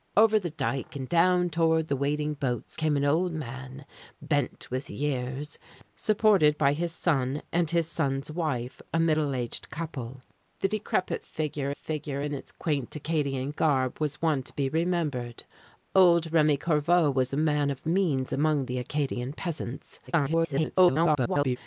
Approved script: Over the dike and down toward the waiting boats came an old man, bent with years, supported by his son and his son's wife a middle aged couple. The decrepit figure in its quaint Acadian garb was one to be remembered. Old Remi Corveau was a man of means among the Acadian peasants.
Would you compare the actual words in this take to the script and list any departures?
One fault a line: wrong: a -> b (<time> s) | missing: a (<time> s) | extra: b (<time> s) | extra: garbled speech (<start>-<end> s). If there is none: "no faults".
extra: figure (11.8 s)
extra: garbled speech (20.1-21.6 s)